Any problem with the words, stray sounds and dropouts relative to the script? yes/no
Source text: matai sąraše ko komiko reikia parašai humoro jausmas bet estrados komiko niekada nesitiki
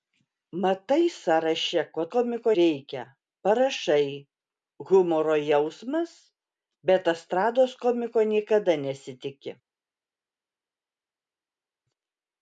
no